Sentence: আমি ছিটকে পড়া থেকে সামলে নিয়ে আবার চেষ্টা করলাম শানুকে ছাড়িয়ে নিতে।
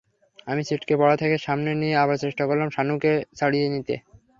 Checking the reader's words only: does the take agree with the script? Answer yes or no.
yes